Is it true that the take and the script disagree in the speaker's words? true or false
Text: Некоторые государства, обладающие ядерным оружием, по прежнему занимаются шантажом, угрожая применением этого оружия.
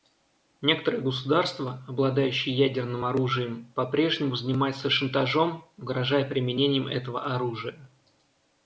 false